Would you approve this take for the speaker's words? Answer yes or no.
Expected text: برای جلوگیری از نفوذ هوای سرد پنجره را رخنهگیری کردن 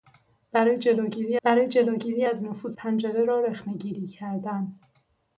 no